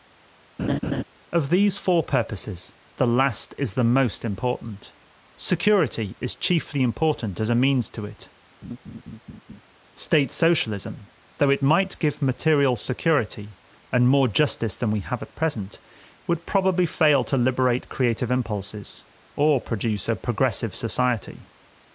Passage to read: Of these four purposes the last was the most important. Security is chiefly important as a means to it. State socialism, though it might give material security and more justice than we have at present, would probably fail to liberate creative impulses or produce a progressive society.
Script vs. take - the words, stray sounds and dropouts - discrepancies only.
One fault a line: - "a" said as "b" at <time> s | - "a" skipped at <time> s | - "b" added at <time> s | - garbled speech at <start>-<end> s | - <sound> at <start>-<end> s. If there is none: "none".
- laugh at 0.6-1.0 s
- "was" said as "is" at 3.6 s
- laugh at 8.6-9.6 s